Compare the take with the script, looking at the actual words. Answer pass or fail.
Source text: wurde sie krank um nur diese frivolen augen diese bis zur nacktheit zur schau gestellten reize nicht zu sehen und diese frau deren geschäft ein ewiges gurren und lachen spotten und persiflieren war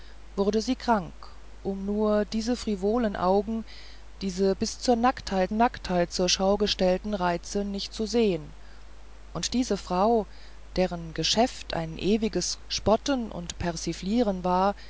fail